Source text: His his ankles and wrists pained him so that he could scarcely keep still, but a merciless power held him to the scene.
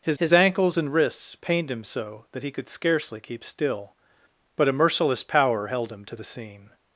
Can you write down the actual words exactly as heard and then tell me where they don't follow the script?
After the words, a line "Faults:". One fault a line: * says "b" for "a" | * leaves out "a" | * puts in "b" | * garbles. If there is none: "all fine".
His his ankles and wrists pained him so that he could scarcely keep still, but a merciless power held him to the scene.
Faults:
all fine